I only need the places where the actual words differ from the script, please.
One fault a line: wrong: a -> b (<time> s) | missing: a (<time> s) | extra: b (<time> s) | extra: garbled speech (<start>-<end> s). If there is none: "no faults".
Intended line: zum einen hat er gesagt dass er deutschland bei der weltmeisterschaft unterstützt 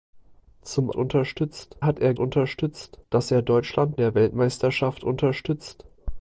wrong: einen -> unterstützt (0.9 s)
wrong: gesagt -> unterstützt (2.2 s)
missing: bei (4.0 s)